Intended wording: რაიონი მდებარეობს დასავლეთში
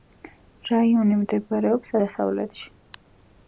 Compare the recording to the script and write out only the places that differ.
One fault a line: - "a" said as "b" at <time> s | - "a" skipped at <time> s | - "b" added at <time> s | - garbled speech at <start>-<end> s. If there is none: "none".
none